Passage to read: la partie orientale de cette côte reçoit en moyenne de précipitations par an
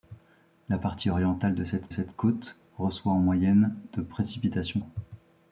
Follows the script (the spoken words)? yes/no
no